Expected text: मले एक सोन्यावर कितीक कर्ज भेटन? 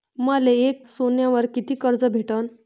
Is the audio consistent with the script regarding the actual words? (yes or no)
yes